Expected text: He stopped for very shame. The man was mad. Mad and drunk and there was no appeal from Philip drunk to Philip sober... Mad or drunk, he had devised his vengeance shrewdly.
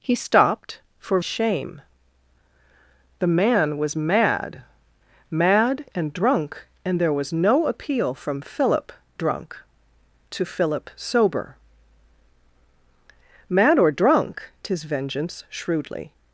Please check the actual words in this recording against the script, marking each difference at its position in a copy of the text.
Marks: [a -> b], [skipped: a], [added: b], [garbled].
He stopped for [skipped: very] shame. The man was mad. Mad and drunk and there was no appeal from Philip drunk to Philip sober... Mad or drunk, [skipped: he had devised] his vengeance shrewdly.